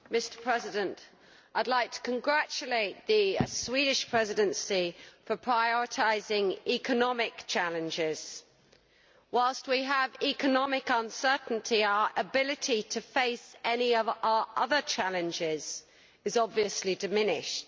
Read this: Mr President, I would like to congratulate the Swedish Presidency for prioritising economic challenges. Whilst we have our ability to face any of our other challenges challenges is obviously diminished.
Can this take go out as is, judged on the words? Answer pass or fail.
fail